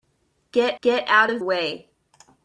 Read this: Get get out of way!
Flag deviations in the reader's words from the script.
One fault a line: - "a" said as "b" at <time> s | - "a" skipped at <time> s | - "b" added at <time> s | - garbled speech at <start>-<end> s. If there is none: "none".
none